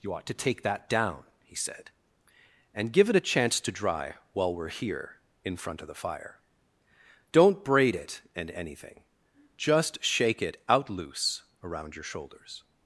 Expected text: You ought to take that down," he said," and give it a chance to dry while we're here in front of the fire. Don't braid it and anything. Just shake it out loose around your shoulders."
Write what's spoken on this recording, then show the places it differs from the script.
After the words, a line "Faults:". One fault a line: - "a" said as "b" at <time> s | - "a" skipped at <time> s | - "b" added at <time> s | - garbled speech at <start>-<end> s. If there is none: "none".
You ought to take that down," he said," and give it a chance to dry while we're here in front of the fire. Don't braid it and anything. Just shake it out loose around your shoulders."
Faults:
none